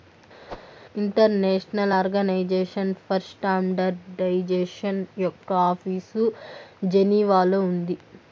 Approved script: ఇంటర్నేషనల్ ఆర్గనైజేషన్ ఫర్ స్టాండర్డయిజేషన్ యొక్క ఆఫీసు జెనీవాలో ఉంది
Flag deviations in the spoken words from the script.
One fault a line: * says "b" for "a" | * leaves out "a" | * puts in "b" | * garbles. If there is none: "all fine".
all fine